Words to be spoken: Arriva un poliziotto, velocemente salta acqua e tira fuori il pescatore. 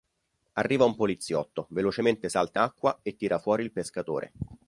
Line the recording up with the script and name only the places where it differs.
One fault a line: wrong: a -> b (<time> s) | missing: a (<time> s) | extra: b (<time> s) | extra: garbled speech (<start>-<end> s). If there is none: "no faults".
no faults